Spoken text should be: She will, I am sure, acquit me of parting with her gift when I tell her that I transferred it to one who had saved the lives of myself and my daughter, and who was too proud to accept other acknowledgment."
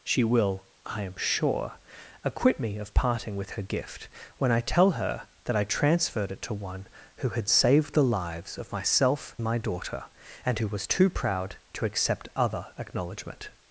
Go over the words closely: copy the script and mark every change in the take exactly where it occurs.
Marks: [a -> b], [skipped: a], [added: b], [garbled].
She will, I am sure, acquit me of parting with her gift when I tell her that I transferred it to one who had saved the lives of myself [skipped: and] my daughter, and who was too proud to accept other acknowledgment."